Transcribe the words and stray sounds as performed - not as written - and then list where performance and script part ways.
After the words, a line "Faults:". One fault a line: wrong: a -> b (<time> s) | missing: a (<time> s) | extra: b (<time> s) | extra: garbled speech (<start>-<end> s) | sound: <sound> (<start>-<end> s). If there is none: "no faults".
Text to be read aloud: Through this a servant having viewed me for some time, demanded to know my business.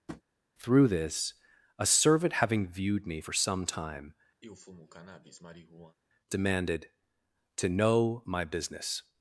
Through this a servant having viewed me for some time, demanded to know my business.
Faults:
sound: tap (0.1-0.2 s)
sound: sniff (4.4-6.0 s)